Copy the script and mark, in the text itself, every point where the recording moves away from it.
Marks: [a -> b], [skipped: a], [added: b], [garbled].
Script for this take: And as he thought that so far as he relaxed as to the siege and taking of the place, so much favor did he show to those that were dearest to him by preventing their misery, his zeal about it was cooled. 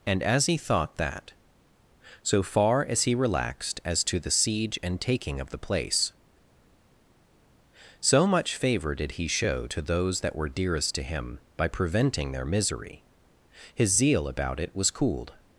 And as he thought that so far as he relaxed as to the siege and taking of the place, so much favor did he show to those that were dearest to him by preventing their misery, his zeal about it was cooled.